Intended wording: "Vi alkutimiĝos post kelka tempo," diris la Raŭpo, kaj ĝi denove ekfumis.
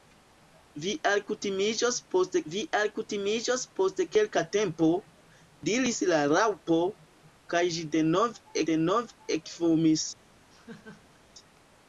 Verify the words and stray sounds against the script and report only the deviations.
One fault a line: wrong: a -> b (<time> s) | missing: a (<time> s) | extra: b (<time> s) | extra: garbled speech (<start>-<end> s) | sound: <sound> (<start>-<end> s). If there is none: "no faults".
extra: vi alkutimiĝos post (2.5 s)
extra: denove (8.7 s)
sound: laugh (10.5-11.2 s)